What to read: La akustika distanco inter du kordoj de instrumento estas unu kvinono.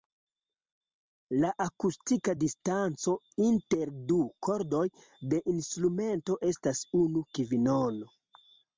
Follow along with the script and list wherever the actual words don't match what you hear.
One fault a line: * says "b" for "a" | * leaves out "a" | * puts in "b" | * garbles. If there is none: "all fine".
all fine